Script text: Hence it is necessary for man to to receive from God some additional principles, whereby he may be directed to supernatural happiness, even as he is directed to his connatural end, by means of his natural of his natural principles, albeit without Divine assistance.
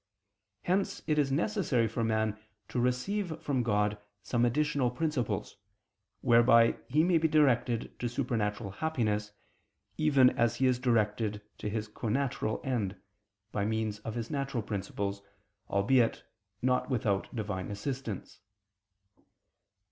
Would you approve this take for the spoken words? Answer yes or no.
no